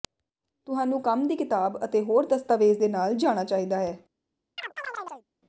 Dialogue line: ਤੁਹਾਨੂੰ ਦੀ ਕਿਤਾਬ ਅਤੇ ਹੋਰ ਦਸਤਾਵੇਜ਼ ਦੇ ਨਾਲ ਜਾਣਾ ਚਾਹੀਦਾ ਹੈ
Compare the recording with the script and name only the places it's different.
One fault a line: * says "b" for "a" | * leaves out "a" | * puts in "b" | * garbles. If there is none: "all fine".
* puts in "ਕੰਮ"